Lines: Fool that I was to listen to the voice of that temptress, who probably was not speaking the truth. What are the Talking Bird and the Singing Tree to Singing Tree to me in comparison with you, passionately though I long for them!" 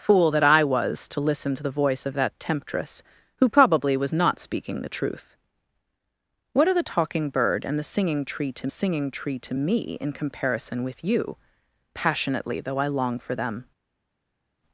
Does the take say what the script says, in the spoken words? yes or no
yes